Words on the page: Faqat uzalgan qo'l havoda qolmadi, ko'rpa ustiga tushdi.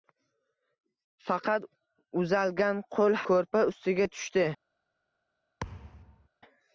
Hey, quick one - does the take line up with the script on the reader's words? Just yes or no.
no